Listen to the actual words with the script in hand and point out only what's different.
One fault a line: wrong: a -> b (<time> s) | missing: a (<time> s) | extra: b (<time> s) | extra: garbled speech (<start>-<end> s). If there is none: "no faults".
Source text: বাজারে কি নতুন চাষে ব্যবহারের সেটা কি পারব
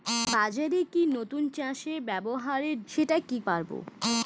no faults